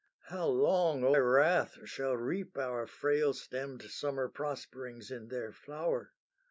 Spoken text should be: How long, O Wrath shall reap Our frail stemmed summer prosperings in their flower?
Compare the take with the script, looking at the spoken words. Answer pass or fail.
pass